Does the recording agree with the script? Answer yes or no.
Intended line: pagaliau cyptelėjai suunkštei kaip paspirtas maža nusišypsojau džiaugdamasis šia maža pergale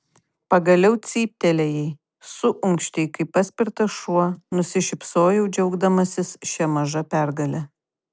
no